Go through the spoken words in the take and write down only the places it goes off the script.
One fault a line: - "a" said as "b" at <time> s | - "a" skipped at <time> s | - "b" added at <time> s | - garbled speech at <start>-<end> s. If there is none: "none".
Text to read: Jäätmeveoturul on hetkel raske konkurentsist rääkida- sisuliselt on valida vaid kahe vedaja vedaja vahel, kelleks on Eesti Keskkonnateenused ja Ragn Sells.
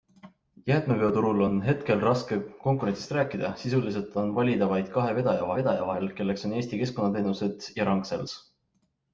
none